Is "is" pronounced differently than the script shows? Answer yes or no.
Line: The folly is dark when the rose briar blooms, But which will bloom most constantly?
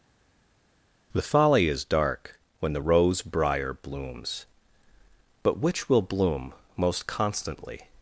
no